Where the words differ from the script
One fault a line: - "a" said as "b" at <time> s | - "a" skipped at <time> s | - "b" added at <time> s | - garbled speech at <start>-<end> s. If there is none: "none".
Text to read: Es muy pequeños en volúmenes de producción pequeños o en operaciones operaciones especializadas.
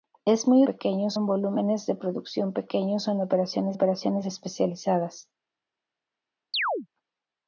none